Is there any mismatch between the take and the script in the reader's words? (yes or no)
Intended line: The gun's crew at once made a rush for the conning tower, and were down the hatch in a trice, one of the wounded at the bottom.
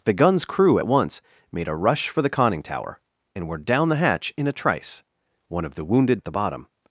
no